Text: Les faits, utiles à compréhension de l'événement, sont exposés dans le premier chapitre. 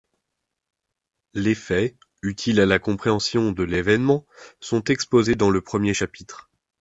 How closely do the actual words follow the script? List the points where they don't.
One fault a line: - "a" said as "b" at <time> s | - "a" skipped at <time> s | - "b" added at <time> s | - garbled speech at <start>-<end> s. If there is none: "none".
- "la" added at 2.6 s